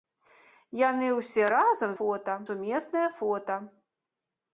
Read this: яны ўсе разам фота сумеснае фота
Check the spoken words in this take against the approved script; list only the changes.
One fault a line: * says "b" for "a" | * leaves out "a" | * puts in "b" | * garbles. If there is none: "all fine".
all fine